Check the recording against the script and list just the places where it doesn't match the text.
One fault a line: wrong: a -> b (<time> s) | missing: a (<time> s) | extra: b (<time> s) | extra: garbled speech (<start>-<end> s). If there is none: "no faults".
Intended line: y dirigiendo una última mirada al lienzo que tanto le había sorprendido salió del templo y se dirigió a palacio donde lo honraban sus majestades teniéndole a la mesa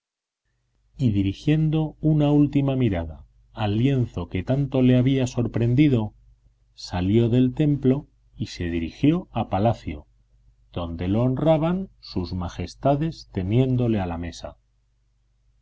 no faults